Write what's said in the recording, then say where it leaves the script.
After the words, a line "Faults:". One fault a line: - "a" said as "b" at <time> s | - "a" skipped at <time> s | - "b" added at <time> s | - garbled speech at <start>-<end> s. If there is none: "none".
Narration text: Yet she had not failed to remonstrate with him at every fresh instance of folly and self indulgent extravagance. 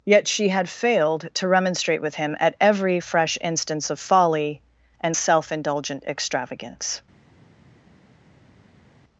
Yet she had failed to remonstrate with him at every fresh instance of folly and self indulgent extravagance.
Faults:
- "not" skipped at 0.7 s